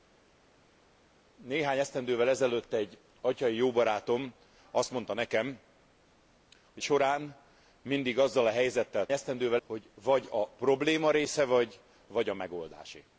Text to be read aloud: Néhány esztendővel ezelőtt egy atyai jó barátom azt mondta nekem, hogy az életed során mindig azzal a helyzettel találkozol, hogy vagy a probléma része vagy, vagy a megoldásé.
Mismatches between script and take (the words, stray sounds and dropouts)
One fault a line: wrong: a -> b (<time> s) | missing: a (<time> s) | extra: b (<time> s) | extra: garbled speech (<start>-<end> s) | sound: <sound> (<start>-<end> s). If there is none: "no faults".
missing: az életed (6.8 s)
wrong: találkozol -> esztendővel (9.1 s)